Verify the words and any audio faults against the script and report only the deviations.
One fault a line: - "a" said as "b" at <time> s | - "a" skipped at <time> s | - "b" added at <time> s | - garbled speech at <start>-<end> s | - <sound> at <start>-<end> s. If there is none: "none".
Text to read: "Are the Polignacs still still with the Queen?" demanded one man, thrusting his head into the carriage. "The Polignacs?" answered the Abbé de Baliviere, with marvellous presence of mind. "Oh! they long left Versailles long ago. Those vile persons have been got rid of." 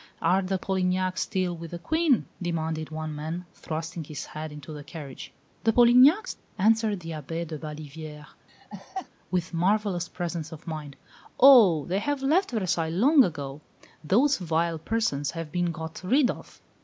- "still" skipped at 1.6 s
- laugh at 8.5-9.1 s
- "long" said as "have" at 12.0 s